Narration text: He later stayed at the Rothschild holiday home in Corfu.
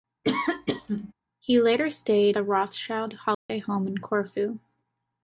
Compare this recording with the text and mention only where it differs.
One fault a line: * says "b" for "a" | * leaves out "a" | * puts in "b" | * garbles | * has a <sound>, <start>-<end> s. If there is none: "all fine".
* has a sneeze, 0.2-1.1 s
* leaves out "at"
* has a dropout, 3.3-3.5 s